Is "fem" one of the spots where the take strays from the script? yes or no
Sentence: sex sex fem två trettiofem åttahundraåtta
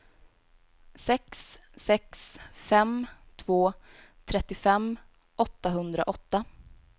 no